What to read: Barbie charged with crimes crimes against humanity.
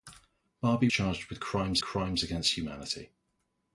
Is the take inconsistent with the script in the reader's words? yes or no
no